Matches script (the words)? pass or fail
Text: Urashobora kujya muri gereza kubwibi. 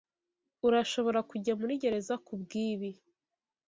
pass